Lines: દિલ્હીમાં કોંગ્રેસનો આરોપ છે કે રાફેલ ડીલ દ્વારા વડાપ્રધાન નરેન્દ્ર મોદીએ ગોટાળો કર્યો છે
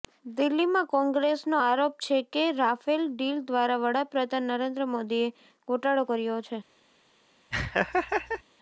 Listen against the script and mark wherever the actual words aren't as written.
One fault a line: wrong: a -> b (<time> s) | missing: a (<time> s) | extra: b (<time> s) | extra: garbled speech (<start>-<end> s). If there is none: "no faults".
no faults